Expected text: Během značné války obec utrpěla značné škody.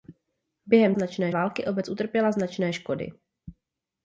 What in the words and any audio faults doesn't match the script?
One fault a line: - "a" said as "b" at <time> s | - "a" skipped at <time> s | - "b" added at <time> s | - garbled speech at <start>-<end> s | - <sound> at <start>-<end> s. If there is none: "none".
none